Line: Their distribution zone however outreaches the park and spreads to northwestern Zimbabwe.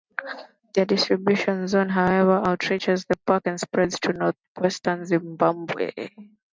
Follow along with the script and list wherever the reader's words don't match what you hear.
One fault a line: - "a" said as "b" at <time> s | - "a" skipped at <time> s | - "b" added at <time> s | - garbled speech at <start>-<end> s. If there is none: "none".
none